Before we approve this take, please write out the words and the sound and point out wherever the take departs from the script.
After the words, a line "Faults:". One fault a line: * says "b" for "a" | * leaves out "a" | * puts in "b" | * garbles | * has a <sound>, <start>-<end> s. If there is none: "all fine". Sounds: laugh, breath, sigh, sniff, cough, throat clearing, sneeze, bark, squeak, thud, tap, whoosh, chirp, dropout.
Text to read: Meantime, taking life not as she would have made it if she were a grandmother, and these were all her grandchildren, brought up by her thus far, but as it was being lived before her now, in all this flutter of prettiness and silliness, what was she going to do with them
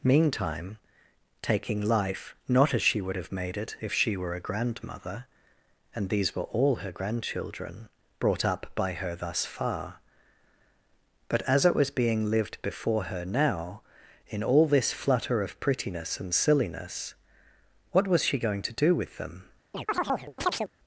Meantime, taking life not as she would have made it if she were a grandmother, and these were all her grandchildren, brought up by her thus far, but as it was being lived before her now, in all this flutter of prettiness and silliness, what was she going to do with them
Faults:
* has a chirp, 19.7-20.7 s